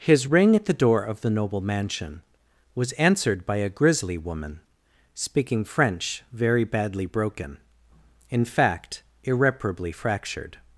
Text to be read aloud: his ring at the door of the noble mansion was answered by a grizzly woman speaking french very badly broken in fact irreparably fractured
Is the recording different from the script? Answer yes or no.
no